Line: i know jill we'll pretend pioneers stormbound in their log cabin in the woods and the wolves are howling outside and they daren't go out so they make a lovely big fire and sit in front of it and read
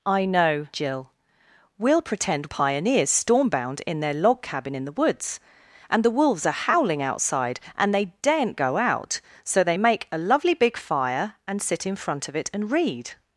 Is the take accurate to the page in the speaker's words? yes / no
yes